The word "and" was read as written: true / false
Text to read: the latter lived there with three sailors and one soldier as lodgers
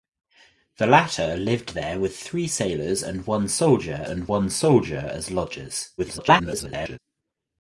true